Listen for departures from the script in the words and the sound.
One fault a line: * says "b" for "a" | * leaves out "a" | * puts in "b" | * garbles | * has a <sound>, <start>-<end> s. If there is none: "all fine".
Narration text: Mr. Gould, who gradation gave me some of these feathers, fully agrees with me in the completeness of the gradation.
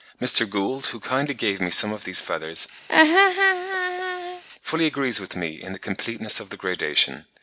* says "kindly" for "gradation"
* has a laugh, 2.9-4.4 s